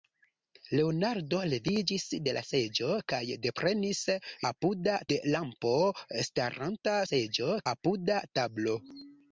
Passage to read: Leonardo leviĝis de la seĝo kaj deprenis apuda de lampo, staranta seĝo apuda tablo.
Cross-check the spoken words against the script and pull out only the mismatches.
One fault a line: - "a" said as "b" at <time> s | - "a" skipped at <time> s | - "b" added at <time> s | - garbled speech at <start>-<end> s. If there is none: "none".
none